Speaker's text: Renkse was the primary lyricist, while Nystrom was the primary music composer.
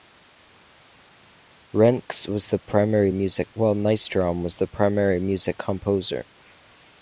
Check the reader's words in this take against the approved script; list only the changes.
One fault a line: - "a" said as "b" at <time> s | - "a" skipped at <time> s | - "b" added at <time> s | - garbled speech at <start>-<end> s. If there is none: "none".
- "lyricist" said as "music" at 3.1 s